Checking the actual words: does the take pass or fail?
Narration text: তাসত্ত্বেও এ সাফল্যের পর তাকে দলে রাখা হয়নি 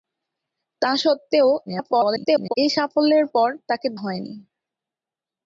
fail